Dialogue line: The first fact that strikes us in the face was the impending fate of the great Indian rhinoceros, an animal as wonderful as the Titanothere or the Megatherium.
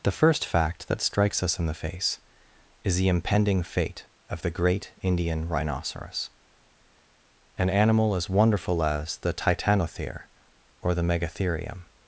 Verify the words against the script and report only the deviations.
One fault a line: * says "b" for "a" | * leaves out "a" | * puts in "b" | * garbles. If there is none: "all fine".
* says "is" for "was"